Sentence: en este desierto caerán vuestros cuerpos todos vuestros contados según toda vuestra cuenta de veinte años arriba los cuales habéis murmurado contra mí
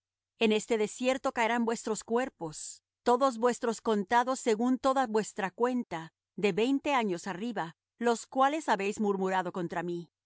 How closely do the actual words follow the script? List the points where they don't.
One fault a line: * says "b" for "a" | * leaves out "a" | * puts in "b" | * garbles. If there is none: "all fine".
all fine